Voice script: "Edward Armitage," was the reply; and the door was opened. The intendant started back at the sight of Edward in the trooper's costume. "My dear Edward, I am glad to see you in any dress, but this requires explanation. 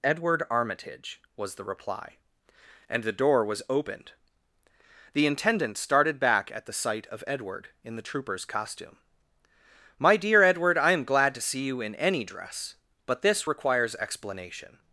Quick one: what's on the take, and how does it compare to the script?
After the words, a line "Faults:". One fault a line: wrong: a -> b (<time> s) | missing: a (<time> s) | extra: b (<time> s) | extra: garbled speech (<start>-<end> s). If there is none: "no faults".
"Edward Armitage," was the reply; and the door was opened. The intendant started back at the sight of Edward in the trooper's costume. "My dear Edward, I am glad to see you in any dress, but this requires explanation.
Faults:
no faults